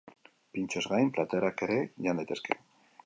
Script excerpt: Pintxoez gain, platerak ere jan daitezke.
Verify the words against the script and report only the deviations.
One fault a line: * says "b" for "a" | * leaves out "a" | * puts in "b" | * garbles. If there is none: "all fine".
all fine